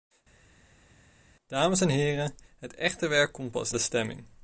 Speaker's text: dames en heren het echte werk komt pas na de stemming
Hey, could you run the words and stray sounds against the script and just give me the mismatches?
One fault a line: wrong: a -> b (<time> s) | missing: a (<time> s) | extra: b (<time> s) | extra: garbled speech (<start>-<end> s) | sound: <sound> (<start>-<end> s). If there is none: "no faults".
missing: na (3.7 s)